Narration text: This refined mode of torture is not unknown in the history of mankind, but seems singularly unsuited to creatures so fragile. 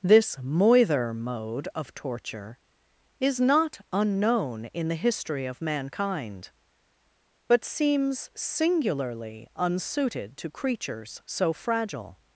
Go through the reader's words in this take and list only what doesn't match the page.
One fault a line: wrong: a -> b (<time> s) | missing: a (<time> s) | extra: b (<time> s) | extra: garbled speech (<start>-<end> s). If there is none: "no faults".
wrong: refined -> moither (0.4 s)